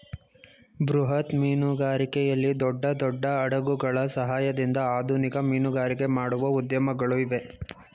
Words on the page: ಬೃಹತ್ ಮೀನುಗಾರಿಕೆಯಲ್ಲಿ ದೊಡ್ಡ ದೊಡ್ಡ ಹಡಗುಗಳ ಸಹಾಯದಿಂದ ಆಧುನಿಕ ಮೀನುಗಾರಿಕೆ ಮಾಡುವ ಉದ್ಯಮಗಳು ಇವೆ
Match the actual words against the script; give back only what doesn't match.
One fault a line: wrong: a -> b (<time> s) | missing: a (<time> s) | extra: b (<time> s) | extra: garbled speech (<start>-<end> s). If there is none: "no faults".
no faults